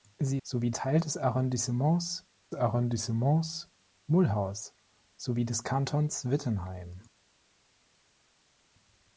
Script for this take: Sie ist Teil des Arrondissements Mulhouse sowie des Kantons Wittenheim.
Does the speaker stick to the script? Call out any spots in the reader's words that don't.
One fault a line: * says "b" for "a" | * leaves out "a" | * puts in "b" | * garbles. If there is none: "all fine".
* says "sowie" for "ist"
* puts in "Arrondissements"